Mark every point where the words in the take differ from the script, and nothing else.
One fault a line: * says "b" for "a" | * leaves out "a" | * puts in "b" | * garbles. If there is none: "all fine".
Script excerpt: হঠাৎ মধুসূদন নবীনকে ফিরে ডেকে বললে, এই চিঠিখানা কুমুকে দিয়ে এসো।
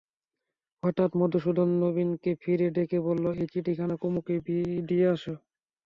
all fine